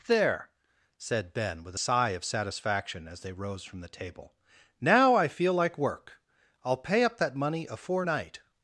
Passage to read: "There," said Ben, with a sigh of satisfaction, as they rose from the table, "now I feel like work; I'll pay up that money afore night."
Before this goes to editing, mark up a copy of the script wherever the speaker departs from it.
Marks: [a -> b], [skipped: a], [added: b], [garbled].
"There," said Ben, with a sigh of satisfaction, as they rose from the table, "now I feel like work; I'll pay up that money afore night."